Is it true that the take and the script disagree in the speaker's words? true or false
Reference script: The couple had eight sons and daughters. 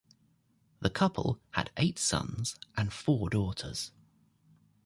true